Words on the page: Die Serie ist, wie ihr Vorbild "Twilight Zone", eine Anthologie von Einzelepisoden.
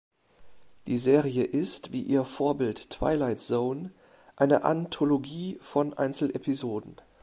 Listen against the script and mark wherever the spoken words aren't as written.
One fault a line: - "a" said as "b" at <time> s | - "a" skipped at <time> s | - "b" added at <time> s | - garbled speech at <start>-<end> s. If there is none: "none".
none